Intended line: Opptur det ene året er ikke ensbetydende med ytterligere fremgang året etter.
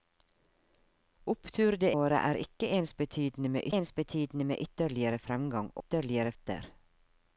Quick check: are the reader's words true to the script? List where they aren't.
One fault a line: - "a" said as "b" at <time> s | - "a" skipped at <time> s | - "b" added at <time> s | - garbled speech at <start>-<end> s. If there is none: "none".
- "ene" skipped at 1.9 s
- "ensbetydende med" added at 3.8 s
- "året" said as "ytterligere" at 5.8 s